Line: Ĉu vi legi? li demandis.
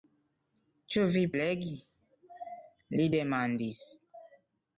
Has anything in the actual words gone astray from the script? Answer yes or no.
no